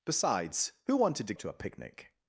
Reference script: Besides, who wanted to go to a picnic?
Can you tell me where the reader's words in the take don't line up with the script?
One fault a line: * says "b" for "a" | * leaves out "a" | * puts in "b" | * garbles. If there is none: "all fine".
* leaves out "go"